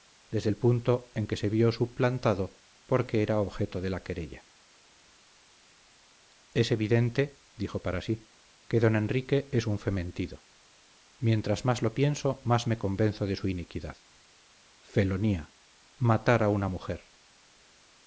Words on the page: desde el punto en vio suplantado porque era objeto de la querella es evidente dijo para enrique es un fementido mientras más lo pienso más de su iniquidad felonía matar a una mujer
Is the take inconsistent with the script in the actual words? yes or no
yes